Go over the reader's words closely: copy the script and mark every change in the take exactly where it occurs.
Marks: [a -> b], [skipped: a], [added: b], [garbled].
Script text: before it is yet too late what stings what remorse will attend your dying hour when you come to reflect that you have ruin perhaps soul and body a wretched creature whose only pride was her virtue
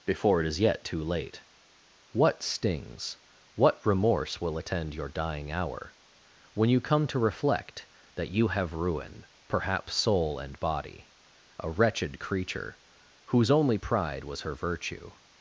before it is yet too late what stings what remorse will attend your dying hour when you come to reflect that you have ruin perhaps soul and body a wretched creature whose only pride was her virtue